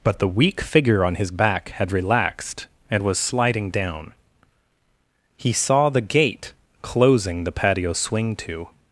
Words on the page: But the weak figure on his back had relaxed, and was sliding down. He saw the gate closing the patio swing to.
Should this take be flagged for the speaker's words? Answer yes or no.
no